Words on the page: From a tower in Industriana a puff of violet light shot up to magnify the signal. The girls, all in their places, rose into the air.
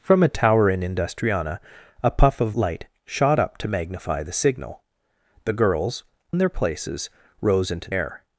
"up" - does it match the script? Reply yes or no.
yes